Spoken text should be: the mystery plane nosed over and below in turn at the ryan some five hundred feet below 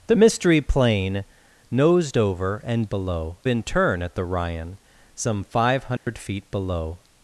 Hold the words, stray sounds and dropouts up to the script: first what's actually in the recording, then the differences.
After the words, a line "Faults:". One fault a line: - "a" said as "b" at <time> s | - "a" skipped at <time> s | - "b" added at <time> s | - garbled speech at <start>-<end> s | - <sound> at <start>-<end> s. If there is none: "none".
the mystery plane nosed over and below in turn at the ryan some five hundred feet below
Faults:
- dropout at 6.0-6.1 s